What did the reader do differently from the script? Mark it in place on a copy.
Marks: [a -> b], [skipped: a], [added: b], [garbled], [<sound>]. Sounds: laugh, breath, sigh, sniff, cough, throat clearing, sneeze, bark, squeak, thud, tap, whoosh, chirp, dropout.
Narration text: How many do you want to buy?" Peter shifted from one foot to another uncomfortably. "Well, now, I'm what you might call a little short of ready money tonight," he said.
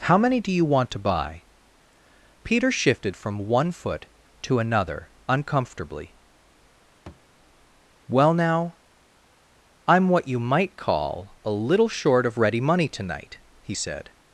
How many do you want to buy?" Peter shifted from one foot to another uncomfortably. [thud] "Well, now, I'm what you might call a little short of ready money tonight," he said.